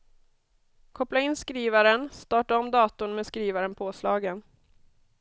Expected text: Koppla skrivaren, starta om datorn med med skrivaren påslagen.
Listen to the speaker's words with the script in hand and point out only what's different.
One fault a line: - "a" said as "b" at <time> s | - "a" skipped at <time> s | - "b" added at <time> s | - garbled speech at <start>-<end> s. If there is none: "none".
- "in" added at 1.2 s
- "med" skipped at 3.3 s